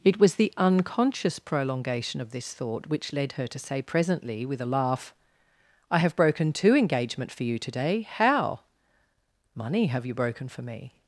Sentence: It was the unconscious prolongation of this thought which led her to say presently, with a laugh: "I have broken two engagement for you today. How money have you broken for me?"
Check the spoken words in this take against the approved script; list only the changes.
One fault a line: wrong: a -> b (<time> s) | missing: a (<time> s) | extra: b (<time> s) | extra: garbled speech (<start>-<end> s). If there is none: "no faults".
no faults